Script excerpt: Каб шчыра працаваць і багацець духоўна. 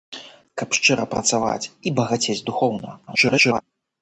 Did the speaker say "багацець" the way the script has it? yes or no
yes